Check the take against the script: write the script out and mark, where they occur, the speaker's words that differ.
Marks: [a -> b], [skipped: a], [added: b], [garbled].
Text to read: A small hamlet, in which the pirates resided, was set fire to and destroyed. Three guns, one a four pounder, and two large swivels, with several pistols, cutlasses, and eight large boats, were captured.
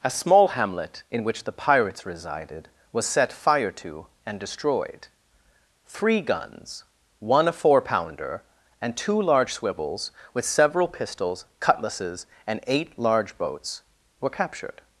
A small hamlet, in which the pirates resided, was set fire to and destroyed. Three guns, one a four pounder, and two large swivels, with several pistols, cutlasses, and eight large boats, were captured.